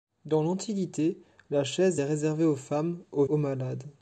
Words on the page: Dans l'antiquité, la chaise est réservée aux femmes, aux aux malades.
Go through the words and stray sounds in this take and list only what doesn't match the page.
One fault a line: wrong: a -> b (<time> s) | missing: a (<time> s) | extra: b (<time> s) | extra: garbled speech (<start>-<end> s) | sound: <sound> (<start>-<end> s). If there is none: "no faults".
no faults